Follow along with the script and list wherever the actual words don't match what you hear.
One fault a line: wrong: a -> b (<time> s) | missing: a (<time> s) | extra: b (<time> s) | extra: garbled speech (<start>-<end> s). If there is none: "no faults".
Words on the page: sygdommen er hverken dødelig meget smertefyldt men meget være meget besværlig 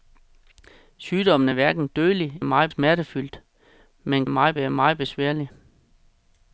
no faults